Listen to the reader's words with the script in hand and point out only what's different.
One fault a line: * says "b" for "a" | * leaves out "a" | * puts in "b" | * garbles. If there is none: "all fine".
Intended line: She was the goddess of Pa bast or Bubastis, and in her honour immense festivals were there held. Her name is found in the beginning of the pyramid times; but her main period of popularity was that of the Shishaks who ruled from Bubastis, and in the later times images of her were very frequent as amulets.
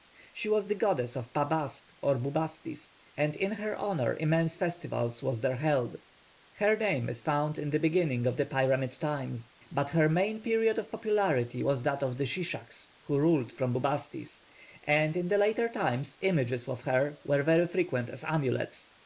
all fine